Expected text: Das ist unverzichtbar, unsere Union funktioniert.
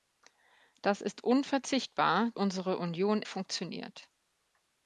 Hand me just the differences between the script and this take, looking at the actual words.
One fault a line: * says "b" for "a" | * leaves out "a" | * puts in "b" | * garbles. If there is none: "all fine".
all fine